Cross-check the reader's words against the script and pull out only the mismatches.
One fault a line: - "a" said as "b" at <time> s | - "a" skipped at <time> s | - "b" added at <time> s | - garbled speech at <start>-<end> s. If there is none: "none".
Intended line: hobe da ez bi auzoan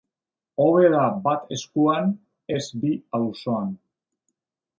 - "bat eskuan" added at 1.3 s